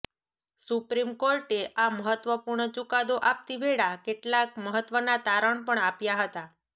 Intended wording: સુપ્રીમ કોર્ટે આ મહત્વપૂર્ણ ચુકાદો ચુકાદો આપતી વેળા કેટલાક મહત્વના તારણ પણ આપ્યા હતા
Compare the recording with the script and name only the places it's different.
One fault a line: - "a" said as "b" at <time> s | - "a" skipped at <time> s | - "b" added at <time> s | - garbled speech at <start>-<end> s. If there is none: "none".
- "ચુકાદો" skipped at 3.2 s